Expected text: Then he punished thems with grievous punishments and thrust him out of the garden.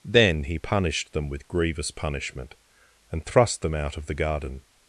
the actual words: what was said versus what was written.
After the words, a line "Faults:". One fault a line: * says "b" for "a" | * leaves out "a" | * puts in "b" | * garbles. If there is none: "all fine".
Then he punished them with grievous punishment and thrust them out of the garden.
Faults:
* says "them" for "thems"
* says "punishment" for "punishments"
* says "them" for "him"